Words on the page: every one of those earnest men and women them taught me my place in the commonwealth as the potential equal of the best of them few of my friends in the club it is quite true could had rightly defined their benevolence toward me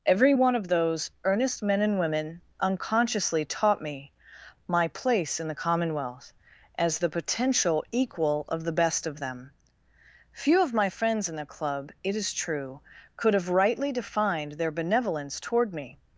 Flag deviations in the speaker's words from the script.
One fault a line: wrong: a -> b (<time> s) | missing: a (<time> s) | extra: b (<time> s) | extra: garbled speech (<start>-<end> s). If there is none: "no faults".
wrong: them -> unconsciously (2.6 s)
missing: quite (12.3 s)
wrong: had -> have (13.3 s)